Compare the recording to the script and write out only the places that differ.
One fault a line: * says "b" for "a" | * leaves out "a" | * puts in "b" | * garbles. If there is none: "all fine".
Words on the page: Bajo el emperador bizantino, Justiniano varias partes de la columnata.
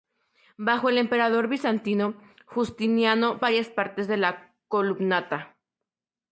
all fine